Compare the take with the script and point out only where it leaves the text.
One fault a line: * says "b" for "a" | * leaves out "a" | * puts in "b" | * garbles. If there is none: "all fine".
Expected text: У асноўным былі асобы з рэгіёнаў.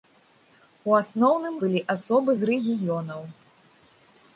all fine